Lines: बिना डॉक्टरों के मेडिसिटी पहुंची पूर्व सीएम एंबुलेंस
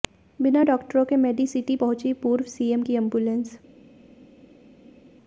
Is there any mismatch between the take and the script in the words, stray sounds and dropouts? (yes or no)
yes